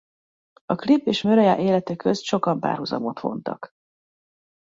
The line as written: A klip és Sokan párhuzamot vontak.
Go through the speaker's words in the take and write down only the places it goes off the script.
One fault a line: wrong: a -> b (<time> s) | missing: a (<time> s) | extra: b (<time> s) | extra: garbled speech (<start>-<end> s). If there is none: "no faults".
extra: Mariah élete közt (1.2 s)